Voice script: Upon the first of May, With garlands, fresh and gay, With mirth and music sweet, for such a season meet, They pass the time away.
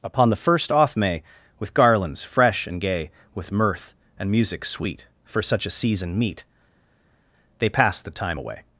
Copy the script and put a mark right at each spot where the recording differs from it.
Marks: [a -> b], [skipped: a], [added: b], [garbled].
Upon the first [of -> off] May, With garlands, fresh and gay, With mirth and music sweet, for such a season meet, They pass the time away.